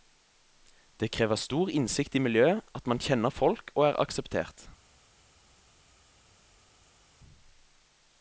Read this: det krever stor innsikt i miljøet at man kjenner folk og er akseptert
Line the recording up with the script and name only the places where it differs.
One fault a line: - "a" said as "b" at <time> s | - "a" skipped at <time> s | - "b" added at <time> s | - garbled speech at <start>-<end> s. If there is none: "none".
none